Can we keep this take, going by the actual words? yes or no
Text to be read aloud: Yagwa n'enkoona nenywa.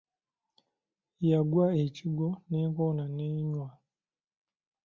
no